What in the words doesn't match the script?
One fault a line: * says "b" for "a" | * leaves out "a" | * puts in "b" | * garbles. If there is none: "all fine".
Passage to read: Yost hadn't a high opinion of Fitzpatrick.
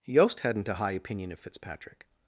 all fine